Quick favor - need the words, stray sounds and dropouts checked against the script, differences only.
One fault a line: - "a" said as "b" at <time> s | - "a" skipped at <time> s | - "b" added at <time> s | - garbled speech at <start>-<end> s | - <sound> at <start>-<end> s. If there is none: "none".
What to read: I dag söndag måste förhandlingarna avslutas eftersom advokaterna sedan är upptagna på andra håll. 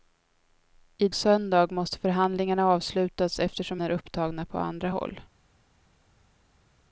- "dag" skipped at 1.1 s
- "advokaterna sedan" skipped at 3.8 s